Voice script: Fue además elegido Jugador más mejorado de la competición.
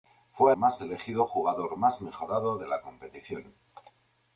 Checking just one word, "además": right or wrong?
wrong